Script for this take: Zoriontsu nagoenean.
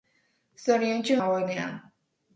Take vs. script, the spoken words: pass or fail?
pass